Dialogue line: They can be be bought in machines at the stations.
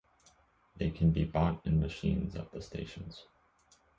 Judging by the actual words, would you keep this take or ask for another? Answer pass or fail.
fail